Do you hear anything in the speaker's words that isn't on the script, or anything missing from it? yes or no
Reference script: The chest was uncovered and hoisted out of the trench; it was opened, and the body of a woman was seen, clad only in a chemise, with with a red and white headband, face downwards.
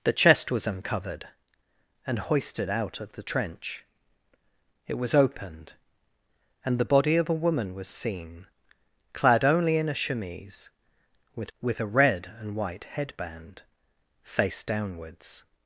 no